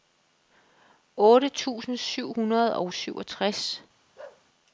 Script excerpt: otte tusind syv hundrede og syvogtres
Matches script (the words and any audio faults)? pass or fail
fail